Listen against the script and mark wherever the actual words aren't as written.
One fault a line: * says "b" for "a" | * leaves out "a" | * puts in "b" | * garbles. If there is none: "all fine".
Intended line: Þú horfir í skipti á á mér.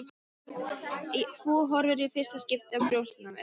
* puts in "fyrsta"
* puts in "brjóstin"